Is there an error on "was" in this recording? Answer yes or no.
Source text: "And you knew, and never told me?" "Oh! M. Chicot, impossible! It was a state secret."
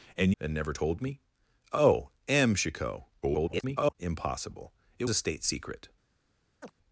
yes